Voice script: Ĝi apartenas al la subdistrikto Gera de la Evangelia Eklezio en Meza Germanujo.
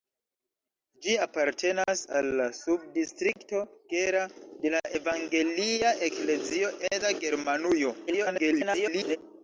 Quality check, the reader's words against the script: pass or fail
fail